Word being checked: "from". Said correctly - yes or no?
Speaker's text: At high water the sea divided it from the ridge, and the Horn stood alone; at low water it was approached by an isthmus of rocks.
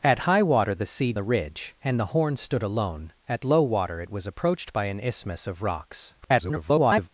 no